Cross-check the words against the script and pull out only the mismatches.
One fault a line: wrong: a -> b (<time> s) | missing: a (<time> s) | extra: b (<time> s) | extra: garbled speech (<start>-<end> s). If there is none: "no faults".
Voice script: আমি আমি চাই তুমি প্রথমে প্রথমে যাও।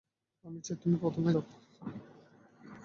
missing: আমি (0.6 s)
missing: প্রথমে (1.3 s)